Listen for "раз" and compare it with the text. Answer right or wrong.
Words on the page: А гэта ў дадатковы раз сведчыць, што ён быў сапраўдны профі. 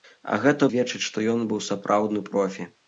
wrong